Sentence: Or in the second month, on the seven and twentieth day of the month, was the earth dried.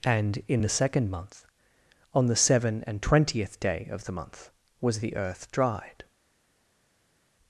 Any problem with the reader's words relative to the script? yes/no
yes